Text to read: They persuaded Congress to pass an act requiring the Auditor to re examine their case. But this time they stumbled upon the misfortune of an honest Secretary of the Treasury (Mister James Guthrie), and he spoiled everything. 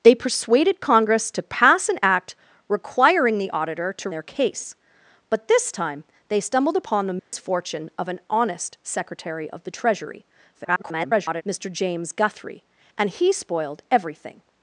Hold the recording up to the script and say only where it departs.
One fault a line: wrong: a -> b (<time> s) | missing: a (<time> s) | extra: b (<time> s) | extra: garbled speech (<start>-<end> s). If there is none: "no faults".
missing: re examine (4.1 s)
extra: garbled speech (10.5-11.4 s)